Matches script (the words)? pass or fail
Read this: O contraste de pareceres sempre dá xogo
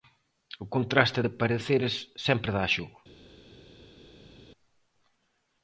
pass